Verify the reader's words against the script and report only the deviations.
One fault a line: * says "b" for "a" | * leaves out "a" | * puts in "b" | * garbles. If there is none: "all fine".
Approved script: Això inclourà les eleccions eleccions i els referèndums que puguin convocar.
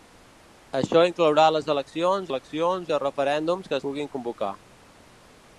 all fine